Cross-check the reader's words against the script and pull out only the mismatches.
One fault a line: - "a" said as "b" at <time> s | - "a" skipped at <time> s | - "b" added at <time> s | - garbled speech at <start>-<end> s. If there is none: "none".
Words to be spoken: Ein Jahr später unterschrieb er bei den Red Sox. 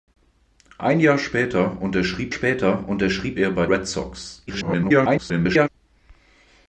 - "später unterschrieb" added at 2.3 s
- "den" skipped at 3.7 s
- garbled speech at 4.5-5.7 s